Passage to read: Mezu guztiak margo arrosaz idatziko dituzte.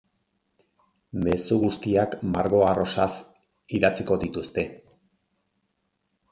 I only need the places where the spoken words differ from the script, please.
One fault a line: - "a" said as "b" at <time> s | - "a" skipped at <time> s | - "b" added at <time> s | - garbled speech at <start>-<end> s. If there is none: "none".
none